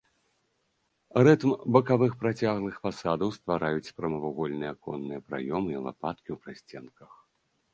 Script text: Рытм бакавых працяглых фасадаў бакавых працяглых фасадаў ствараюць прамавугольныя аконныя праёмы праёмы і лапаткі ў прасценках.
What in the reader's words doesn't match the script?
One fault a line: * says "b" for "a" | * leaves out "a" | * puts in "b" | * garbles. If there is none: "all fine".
* leaves out "бакавых працяглых фасадаў"
* leaves out "праёмы"